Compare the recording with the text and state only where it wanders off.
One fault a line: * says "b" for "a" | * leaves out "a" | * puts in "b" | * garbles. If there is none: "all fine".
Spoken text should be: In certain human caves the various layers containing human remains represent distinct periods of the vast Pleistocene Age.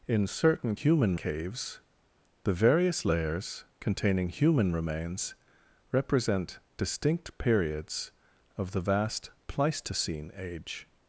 all fine